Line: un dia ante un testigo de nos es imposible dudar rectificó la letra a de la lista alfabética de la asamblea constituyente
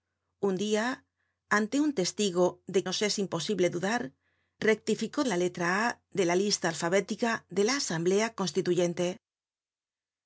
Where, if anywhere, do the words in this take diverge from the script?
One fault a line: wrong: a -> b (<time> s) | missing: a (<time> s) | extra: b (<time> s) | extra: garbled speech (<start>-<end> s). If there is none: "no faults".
no faults